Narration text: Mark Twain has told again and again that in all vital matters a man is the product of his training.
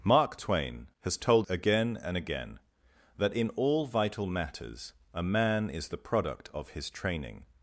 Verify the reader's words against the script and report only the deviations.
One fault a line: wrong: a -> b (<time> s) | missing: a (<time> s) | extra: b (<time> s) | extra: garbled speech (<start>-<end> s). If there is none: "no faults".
no faults